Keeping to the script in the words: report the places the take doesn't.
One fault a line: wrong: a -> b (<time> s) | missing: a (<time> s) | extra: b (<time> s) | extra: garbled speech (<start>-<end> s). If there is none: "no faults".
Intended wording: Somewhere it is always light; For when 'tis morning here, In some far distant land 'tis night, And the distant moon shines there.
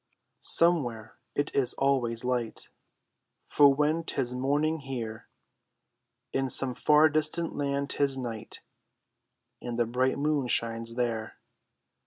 wrong: distant -> bright (9.8 s)